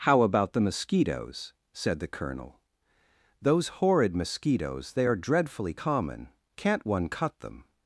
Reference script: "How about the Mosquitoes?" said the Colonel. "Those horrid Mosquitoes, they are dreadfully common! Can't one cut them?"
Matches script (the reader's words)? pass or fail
pass